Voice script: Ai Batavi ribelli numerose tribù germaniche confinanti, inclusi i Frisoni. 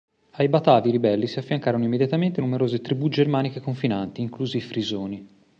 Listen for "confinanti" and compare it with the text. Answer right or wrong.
right